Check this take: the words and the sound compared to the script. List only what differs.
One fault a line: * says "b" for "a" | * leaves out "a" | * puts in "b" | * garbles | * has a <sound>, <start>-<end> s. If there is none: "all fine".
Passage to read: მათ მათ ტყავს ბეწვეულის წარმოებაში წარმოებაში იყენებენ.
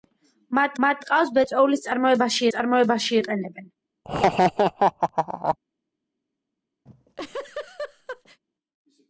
* has a laugh, 4.0-5.6 s
* has a laugh, 6.9-8.4 s